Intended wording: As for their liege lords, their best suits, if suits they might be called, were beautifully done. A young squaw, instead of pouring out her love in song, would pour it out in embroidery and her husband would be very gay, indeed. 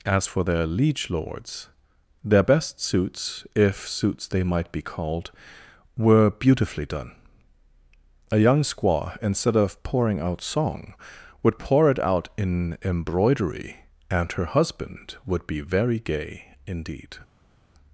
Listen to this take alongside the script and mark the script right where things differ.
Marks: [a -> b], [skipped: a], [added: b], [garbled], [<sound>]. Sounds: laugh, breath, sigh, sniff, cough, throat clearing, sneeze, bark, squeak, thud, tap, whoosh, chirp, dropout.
As for their liege lords, their best suits, if suits they might be called, were beautifully done. A young squaw, instead of pouring out [skipped: her love in] song, would pour it out in embroidery and her husband would be very gay, indeed.